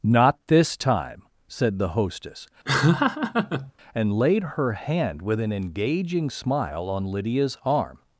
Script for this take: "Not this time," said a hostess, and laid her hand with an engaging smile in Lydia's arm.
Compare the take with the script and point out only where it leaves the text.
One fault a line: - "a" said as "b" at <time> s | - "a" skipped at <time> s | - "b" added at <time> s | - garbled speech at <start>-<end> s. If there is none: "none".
- "a" said as "the" at 1.8 s
- "in" said as "on" at 6.9 s